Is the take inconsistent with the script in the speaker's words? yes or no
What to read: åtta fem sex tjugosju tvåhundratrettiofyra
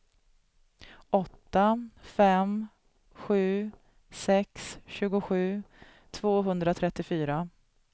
yes